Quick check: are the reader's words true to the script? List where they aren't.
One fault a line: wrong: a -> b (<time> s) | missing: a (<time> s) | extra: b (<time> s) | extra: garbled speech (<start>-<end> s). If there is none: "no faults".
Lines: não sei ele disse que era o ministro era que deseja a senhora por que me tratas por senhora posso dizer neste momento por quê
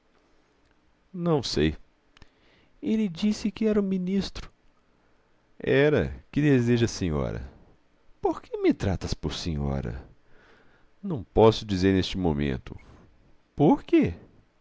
extra: não (11.0 s)